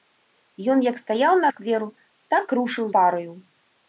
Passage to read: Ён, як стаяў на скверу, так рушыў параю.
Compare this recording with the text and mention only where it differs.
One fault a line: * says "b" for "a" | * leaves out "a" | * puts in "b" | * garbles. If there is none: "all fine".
all fine